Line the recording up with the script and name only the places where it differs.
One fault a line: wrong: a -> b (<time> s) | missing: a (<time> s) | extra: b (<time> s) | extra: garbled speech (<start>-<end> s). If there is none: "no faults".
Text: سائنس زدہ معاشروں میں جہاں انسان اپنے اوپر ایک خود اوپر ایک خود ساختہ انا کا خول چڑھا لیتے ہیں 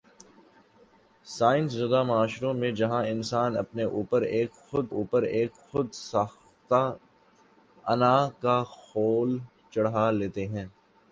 no faults